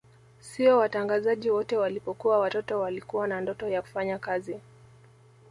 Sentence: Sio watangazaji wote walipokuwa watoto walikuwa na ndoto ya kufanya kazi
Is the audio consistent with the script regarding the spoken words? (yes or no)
yes